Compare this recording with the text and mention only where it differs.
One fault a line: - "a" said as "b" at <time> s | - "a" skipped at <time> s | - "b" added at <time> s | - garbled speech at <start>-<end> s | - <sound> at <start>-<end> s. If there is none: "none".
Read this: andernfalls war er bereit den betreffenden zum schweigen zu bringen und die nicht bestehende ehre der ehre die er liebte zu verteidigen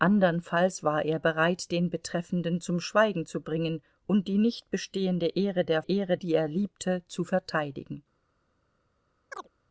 - chirp at 9.3-9.5 s